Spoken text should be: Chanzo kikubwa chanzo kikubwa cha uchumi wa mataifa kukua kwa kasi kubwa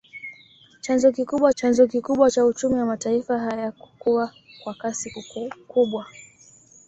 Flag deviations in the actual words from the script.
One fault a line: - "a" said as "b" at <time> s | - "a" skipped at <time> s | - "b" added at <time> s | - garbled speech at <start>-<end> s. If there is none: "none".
none